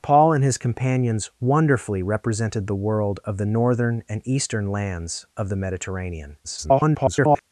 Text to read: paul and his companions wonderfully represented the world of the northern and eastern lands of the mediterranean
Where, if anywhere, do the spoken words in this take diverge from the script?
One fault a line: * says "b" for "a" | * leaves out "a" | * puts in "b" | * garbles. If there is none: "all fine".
* garbles